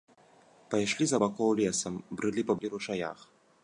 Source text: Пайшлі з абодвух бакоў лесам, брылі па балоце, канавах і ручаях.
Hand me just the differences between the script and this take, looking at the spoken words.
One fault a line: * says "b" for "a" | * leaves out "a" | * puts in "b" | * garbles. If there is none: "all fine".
* leaves out "абодвух"
* leaves out "балоце канавах"